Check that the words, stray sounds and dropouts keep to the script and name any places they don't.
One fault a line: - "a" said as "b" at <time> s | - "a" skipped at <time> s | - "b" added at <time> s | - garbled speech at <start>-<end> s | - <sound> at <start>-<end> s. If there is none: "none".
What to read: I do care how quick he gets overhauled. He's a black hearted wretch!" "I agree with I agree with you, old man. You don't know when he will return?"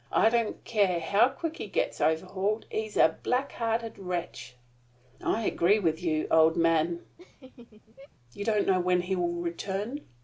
- "do" said as "don't" at 0.3 s
- "I agree with" skipped at 6.0 s
- laugh at 7.2-8.1 s